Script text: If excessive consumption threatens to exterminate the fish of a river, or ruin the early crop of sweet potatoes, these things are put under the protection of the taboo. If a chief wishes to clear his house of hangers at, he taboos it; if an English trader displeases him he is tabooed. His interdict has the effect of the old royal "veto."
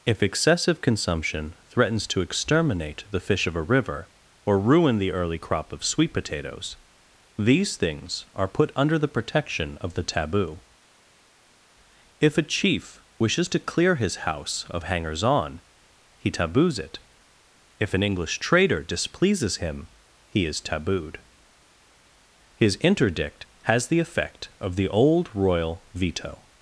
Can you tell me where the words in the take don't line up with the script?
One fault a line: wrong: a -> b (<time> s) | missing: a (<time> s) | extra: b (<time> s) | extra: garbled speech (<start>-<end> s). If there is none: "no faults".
wrong: at -> on (15.2 s)